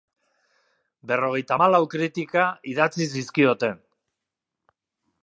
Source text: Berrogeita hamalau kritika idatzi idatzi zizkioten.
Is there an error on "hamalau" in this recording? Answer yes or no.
no